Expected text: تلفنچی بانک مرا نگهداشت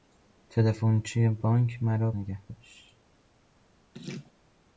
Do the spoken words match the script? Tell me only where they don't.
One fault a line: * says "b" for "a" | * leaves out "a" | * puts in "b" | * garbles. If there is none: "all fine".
all fine